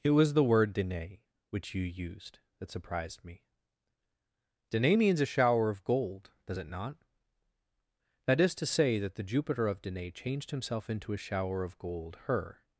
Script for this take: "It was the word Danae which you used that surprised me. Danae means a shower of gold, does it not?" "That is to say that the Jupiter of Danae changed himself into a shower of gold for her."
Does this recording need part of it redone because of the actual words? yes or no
yes